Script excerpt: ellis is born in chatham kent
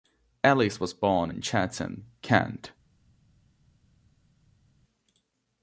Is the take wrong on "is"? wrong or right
wrong